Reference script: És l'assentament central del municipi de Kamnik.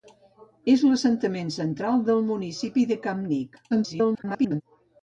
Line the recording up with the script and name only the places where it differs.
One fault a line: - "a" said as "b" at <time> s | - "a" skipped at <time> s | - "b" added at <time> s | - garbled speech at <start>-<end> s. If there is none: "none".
- garbled speech at 3.7-4.6 s